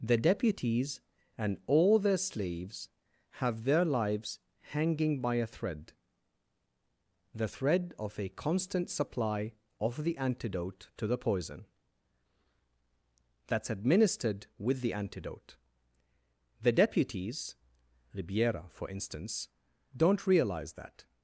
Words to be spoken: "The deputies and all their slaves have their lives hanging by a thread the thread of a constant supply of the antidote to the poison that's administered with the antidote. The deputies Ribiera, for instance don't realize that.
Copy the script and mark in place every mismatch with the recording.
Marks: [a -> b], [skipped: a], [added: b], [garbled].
"The deputies and all their slaves have their lives hanging by a thread the thread of a constant supply of the antidote to the poison that's administered with the antidote. The deputies Ribiera, for instance don't realize that.